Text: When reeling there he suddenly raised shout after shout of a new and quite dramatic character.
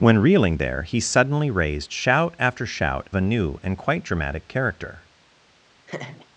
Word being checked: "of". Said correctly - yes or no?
no